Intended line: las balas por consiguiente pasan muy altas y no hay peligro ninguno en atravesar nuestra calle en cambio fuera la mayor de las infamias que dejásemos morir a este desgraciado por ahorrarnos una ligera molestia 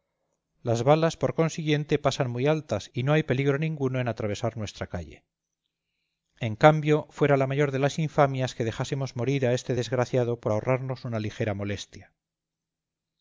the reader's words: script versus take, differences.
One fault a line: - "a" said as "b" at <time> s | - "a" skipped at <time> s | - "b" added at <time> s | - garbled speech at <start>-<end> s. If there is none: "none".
none